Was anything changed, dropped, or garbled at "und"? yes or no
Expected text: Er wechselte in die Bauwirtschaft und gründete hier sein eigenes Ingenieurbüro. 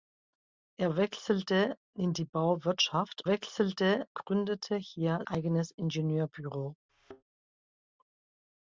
yes